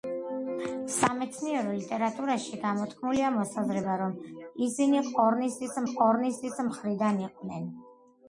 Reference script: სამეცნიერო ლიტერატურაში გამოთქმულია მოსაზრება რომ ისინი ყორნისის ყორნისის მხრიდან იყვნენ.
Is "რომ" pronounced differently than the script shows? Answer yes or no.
no